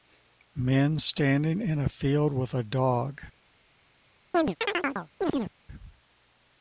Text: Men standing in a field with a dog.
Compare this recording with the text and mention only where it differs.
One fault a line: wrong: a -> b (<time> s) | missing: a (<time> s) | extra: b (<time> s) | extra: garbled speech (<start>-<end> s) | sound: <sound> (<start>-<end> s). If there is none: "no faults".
sound: chirp (4.3-5.5 s)